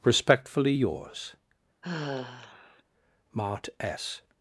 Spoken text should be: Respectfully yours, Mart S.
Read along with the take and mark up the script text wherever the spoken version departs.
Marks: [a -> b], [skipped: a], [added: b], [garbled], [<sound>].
Respectfully yours, [sigh] Mart S.